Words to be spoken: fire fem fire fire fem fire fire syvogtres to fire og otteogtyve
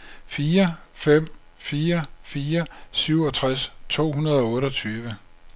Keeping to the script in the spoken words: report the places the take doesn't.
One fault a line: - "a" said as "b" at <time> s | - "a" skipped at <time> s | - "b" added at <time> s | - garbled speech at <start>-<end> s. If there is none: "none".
- "fem fire fire" skipped at 2.7 s
- "fire" said as "hundrede" at 4.1 s